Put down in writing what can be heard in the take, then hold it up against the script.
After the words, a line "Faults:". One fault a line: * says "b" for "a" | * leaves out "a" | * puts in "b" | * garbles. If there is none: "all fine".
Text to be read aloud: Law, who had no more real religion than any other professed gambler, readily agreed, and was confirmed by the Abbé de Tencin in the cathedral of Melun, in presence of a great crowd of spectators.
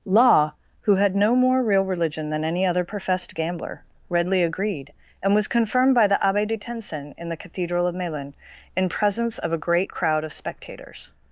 Law, who had no more real religion than any other professed gambler, readily agreed, and was confirmed by the Abbé de Tencin in the cathedral of Melun, in presence of a great crowd of spectators.
Faults:
all fine